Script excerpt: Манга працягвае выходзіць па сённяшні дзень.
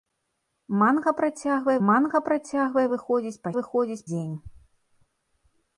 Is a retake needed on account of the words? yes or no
yes